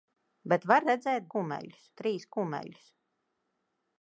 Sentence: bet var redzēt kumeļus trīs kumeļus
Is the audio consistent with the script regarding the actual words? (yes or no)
yes